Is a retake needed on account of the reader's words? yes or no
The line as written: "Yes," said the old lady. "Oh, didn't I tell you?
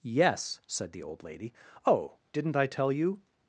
no